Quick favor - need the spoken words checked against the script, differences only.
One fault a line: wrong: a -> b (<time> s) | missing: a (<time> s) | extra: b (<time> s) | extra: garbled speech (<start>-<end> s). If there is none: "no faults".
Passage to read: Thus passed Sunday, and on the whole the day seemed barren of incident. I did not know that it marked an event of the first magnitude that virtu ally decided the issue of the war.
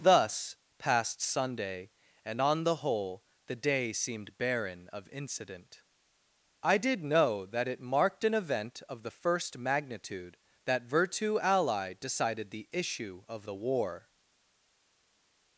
missing: not (7.0 s)